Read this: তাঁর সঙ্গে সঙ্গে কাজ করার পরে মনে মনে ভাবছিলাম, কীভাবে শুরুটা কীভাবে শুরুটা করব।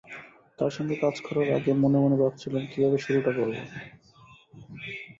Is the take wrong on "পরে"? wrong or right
wrong